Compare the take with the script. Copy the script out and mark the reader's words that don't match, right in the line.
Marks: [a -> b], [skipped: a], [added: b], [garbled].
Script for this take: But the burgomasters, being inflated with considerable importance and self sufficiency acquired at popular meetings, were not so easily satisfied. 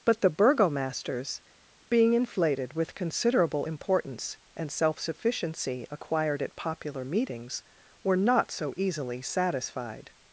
But the burgomasters, being inflated with considerable importance and self sufficiency acquired at popular meetings, were not so easily satisfied.